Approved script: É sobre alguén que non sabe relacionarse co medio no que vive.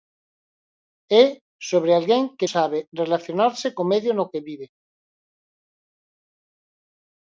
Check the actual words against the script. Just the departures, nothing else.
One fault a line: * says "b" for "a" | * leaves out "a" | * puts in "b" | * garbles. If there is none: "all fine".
* leaves out "non"